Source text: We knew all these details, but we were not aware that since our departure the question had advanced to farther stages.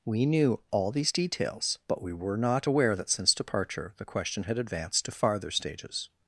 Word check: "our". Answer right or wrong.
wrong